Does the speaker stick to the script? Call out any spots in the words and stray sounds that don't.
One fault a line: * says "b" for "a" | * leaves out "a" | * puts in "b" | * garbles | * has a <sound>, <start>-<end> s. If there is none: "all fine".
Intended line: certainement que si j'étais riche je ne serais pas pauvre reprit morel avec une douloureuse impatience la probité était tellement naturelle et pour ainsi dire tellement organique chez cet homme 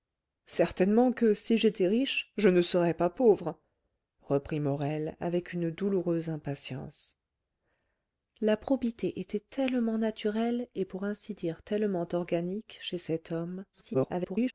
* garbles